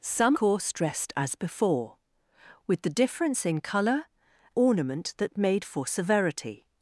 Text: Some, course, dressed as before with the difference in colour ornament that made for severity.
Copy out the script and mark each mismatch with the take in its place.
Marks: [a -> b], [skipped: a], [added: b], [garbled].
Some, course, dressed as before with the difference in colour ornament that made for severity.